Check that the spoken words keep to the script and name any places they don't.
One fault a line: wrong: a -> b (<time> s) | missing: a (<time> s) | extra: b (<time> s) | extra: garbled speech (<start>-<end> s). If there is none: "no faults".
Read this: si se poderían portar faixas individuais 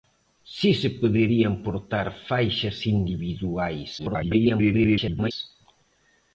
extra: garbled speech (4.0-5.3 s)